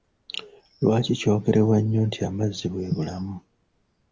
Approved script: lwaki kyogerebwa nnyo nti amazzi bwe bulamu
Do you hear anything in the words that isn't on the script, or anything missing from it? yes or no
no